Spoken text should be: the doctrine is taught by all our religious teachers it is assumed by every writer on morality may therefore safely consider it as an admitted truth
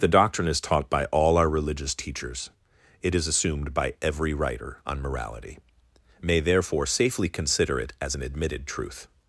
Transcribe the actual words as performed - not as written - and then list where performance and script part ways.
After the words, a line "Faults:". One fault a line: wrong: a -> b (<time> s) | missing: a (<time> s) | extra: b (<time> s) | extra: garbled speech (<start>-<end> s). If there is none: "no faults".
the doctrine is taught by all our religious teachers it is assumed by every writer on morality may therefore safely consider it as an admitted truth
Faults:
no faults